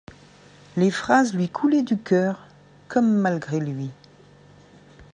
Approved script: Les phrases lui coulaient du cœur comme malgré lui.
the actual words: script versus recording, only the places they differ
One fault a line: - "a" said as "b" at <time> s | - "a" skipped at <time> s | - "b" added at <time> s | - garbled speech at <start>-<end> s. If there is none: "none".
none